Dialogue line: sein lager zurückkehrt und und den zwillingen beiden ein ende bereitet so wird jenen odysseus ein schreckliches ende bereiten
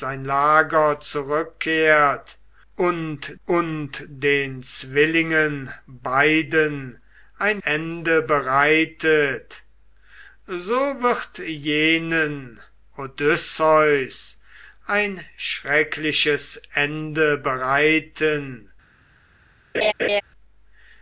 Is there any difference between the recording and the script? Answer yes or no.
no